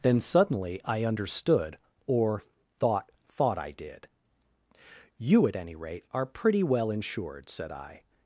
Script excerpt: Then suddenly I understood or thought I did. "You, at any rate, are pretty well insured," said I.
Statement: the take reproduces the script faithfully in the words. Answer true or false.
false